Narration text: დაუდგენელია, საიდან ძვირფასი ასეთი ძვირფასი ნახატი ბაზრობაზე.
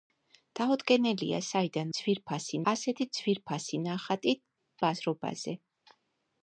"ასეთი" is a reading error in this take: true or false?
false